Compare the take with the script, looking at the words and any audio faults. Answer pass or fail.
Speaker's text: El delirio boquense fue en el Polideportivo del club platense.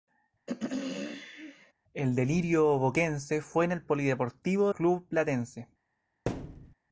fail